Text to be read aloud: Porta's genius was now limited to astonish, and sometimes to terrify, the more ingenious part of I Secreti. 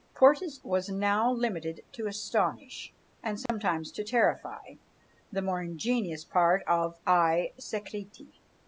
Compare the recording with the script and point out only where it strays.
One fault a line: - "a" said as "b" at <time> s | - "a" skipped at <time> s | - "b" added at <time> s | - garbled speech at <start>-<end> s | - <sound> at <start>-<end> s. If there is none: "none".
- "genius" skipped at 0.6 s
- dropout at 3.5-3.5 s